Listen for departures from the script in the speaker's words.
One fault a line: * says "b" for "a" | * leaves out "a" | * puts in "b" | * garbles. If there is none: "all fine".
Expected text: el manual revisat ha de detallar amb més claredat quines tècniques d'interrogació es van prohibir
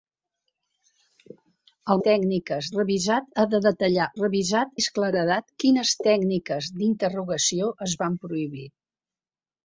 * says "tècniques" for "manual"
* says "revisat" for "amb"